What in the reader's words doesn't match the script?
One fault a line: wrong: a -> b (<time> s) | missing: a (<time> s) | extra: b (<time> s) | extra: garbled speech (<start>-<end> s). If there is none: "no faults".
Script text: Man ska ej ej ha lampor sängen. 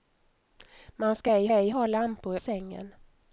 no faults